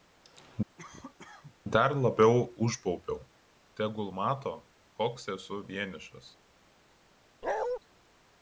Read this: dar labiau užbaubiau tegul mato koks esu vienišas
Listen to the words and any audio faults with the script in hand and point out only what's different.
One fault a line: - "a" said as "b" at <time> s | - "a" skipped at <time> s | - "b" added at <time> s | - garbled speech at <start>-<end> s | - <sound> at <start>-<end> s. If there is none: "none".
- cough at 0.8-1.6 s
- bark at 7.4-7.8 s